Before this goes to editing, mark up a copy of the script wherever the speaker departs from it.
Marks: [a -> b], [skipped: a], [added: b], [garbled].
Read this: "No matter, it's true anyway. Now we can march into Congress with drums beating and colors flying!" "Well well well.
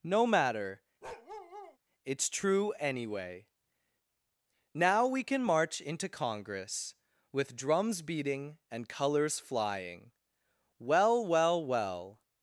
"No matter, it's true anyway. Now we can march into Congress with drums beating and colors flying!" "Well well well.